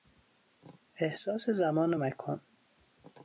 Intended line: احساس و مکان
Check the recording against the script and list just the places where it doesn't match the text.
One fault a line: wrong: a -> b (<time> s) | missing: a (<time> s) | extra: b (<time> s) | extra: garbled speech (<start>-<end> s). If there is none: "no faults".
extra: زمان (1.5 s)